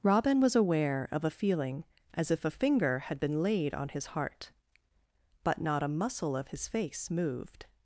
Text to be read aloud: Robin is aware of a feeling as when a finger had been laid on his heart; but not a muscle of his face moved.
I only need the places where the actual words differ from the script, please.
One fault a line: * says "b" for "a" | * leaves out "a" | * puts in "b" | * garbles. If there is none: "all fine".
* says "was" for "is"
* says "if" for "when"